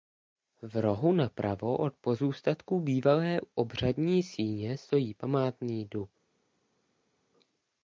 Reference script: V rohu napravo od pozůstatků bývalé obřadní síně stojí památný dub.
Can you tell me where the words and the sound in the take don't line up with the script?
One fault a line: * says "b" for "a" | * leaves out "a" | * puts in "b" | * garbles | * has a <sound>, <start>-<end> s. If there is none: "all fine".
all fine